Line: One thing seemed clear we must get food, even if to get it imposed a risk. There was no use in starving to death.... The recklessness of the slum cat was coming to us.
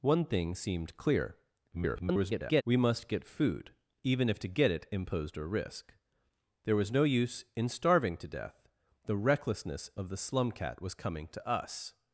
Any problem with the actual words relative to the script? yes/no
yes